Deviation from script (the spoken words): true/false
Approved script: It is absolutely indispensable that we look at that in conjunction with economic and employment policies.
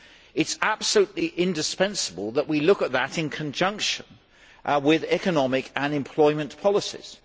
false